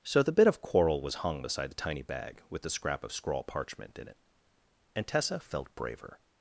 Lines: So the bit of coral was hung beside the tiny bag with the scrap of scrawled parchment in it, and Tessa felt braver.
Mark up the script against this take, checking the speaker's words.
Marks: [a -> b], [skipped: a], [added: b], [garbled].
So the bit of coral was hung beside the tiny bag with the scrap of [scrawled -> scrawl] parchment in it, and Tessa felt braver.